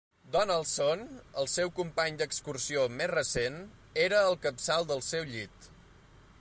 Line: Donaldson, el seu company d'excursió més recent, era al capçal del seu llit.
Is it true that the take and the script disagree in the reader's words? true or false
false